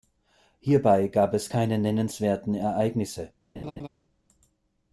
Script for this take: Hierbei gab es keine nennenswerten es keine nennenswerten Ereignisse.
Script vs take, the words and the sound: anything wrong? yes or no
yes